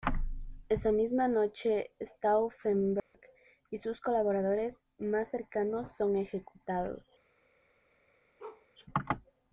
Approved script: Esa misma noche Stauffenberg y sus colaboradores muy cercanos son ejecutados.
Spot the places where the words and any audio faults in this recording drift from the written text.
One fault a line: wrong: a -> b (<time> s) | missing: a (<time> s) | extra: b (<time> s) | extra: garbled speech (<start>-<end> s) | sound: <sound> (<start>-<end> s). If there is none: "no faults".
sound: dropout (3.0-3.1 s)
wrong: muy -> más (5.0 s)
sound: bark (8.4-8.7 s)